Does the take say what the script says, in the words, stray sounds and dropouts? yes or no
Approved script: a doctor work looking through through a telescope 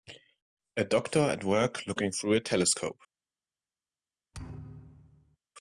no